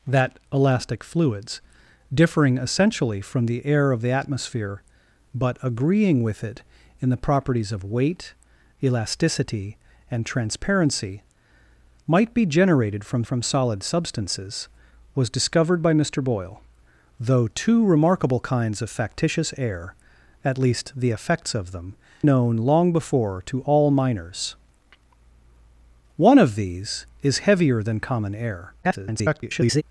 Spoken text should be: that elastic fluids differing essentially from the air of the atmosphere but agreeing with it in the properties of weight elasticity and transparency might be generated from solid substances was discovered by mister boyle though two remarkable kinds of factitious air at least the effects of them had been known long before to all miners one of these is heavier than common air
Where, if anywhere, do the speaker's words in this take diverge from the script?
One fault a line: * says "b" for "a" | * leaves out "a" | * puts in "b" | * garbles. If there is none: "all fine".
* puts in "from"
* leaves out "had been"
* garbles